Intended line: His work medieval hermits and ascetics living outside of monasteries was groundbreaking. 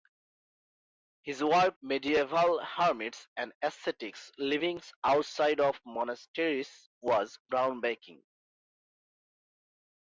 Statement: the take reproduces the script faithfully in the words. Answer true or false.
true